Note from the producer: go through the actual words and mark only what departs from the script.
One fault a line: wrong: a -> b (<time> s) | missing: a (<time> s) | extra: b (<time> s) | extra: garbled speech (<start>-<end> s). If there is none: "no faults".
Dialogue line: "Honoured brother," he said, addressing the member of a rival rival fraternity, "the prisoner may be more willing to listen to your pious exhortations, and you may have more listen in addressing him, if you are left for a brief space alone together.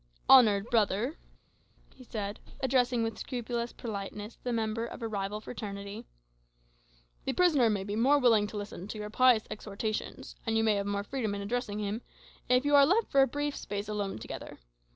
extra: with scrupulous politeness (3.0 s)
missing: rival (5.4 s)
wrong: listen -> freedom (11.0 s)